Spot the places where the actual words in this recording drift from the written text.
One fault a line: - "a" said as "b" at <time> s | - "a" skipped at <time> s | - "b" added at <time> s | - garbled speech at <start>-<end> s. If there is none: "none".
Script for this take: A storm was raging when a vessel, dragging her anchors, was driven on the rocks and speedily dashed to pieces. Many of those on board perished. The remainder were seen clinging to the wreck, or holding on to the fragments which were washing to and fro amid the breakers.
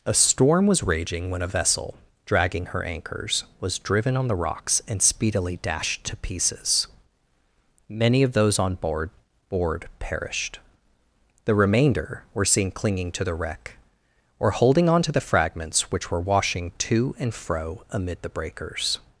- "board" added at 9.5 s